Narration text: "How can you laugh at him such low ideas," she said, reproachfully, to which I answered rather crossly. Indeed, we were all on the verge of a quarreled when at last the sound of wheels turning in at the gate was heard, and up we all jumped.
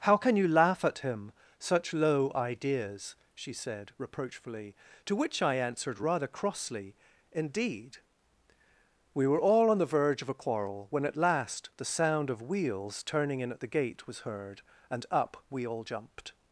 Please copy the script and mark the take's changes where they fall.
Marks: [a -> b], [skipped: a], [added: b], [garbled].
"How can you laugh at him such low ideas," she said, reproachfully, to which I answered rather crossly. Indeed, we were all on the verge of a [quarreled -> quarrel] when at last the sound of wheels turning in at the gate was heard, and up we all jumped.